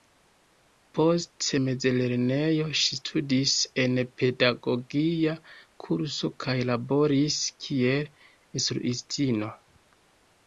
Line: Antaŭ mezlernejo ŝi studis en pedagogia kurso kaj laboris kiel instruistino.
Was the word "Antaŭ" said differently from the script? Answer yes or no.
yes